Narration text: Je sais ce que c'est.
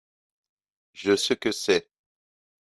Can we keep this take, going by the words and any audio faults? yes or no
no